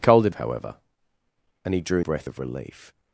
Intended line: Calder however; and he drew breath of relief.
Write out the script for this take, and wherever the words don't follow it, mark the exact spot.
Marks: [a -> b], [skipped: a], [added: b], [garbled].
Calder however; and he drew breath of relief.